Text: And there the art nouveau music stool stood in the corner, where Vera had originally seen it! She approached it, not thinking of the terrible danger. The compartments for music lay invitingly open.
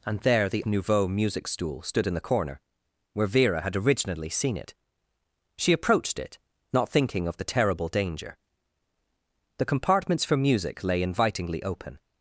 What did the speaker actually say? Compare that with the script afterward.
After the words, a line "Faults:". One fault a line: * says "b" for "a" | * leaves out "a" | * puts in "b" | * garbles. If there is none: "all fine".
And there the nouveau music stool stood in the corner, where Vera had originally seen it! She approached it, not thinking of the terrible danger. The compartments for music lay invitingly open.
Faults:
* leaves out "art"